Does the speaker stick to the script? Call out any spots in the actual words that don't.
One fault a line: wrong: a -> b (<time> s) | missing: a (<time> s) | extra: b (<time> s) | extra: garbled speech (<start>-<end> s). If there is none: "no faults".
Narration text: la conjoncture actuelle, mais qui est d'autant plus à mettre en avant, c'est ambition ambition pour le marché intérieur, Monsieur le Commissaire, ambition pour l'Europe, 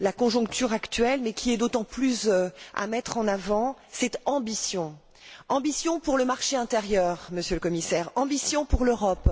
no faults